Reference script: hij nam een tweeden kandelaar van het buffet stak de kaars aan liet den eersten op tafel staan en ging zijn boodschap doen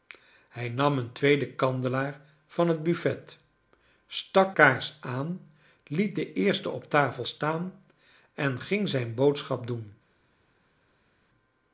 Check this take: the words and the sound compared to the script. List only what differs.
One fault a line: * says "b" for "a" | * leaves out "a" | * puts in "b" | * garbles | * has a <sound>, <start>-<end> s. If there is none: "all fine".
* leaves out "de"